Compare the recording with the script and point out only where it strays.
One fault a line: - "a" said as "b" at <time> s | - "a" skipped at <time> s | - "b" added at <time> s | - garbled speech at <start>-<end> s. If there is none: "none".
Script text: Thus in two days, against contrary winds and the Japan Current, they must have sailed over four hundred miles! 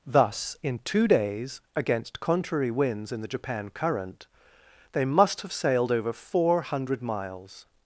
- "and" said as "in" at 3.1 s